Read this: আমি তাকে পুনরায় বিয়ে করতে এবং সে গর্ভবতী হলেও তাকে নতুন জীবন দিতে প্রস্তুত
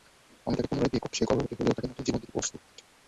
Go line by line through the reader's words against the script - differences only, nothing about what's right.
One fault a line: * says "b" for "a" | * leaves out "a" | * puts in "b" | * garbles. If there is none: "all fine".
* leaves out "এবং"